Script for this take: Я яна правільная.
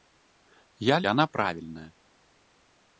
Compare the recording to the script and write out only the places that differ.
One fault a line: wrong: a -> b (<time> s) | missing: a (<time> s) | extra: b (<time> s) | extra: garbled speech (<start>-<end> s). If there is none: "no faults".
no faults